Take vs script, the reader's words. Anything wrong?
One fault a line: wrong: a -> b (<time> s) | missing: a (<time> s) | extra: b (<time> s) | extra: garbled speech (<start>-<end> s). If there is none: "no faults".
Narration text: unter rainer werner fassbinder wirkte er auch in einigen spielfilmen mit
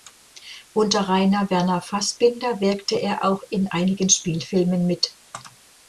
no faults